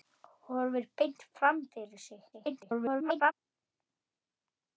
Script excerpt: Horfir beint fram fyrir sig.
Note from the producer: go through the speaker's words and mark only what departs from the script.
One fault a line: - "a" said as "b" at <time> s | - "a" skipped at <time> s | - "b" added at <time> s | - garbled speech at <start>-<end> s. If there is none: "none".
- garbled speech at 2.3-3.3 s